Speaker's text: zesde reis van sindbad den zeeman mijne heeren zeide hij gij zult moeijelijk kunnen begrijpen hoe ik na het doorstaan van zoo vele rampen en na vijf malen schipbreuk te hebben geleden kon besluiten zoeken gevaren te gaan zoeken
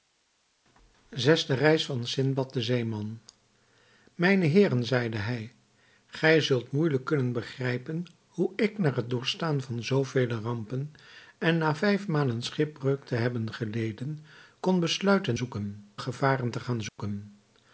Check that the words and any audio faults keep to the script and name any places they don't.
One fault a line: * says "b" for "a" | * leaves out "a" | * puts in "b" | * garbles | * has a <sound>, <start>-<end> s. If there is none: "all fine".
* has a dropout, 16.9-17.0 s